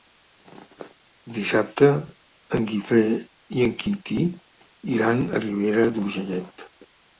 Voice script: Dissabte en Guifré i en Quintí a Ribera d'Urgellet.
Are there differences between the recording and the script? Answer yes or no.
yes